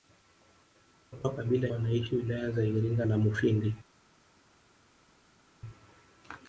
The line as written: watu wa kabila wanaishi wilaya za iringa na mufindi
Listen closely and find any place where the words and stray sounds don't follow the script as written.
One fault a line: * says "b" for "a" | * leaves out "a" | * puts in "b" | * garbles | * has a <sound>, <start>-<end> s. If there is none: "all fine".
all fine